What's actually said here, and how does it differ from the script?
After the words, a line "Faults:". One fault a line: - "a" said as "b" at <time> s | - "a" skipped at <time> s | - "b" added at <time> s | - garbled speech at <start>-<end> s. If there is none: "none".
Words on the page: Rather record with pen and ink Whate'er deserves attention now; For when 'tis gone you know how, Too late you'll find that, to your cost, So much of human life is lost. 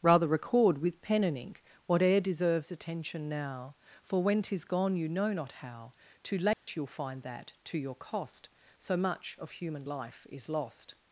Rather record with pen and ink Whate'er deserves attention now; For when 'tis gone you know not how, Too late you'll find that, to your cost, So much of human life is lost.
Faults:
- "not" added at 5.3 s